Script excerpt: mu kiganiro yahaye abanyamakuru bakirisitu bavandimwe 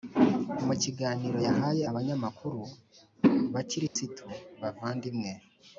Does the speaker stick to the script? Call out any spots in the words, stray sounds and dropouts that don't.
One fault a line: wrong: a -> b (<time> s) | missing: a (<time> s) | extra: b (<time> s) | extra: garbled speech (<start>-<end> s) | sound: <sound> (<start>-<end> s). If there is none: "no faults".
sound: dropout (3.9-4.0 s)